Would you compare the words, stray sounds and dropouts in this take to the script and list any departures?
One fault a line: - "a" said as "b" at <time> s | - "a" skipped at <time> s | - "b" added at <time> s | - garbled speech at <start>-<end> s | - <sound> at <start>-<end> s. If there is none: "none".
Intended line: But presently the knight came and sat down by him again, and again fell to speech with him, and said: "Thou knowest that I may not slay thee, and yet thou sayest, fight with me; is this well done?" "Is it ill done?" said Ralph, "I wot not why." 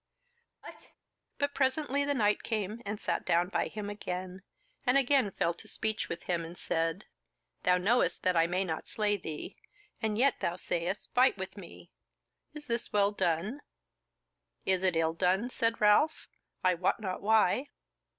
- sneeze at 0.6-1.0 s